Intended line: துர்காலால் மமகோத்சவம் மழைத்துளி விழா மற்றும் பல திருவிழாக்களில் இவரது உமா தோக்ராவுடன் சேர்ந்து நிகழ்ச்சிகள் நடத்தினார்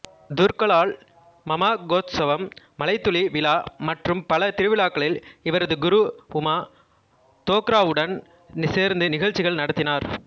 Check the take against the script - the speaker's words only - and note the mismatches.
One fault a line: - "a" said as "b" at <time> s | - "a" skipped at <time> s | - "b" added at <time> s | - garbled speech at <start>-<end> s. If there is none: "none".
- "குரு" added at 5.8 s